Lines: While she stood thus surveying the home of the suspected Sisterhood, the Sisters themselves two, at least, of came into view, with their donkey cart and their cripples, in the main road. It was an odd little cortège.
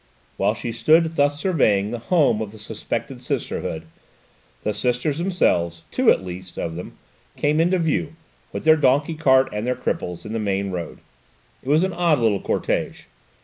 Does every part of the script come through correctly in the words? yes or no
no